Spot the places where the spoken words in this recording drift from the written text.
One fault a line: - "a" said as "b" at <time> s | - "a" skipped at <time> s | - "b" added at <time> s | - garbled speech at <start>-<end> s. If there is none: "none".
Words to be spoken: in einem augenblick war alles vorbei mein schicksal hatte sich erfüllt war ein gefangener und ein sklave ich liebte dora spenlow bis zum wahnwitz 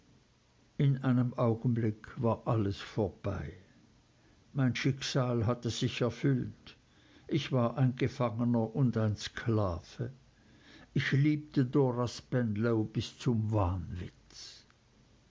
- "ich" added at 7.3 s